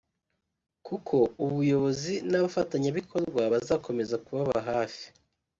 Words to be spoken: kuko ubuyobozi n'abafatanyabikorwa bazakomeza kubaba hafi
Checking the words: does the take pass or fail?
pass